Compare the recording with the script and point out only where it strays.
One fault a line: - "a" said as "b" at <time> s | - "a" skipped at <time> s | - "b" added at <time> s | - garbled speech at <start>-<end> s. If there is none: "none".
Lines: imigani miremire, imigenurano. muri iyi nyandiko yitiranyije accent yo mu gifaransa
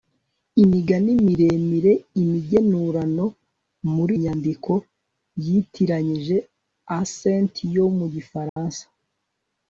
- "iyi" skipped at 4.2 s